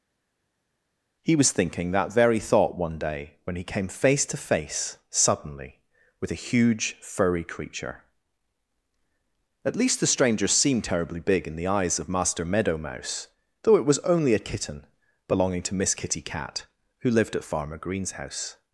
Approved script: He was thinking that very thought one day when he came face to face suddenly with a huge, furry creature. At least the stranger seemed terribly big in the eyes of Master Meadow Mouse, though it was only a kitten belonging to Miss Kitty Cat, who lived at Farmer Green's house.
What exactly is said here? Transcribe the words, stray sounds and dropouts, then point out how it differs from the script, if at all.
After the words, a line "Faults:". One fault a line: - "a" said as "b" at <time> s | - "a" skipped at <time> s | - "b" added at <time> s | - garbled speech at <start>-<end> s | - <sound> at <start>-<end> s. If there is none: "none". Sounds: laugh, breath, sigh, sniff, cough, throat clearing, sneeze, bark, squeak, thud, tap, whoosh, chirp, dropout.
He was thinking that very thought one day when he came face to face suddenly with a huge, furry creature. At least the stranger seemed terribly big in the eyes of Master Meadow Mouse, though it was only a kitten belonging to Miss Kitty Cat, who lived at Farmer Green's house.
Faults:
none